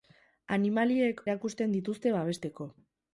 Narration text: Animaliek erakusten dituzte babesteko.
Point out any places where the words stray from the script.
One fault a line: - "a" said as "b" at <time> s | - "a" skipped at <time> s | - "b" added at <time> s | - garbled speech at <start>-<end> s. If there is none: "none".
none